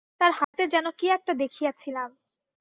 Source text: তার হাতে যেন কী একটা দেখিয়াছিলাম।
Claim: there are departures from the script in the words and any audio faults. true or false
true